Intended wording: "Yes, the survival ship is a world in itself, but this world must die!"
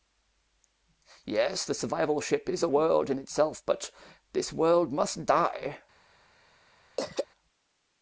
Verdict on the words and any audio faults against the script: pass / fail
fail